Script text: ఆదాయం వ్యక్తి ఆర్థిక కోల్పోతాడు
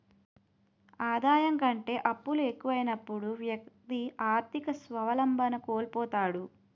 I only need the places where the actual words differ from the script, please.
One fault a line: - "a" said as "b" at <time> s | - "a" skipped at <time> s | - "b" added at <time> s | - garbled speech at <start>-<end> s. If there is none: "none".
- "కంటే అప్పులు ఎక్కువైనప్పుడు" added at 1.6 s
- "స్వావలంబన" added at 4.8 s